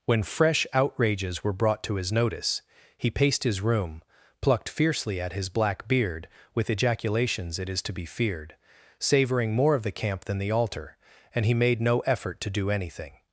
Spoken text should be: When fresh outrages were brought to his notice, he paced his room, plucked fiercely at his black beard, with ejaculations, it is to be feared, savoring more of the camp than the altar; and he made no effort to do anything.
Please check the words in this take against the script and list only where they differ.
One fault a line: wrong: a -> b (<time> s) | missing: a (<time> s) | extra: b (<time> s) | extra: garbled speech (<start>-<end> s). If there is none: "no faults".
no faults